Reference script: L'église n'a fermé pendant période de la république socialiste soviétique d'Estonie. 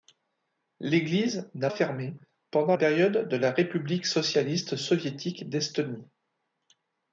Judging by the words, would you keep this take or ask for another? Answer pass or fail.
pass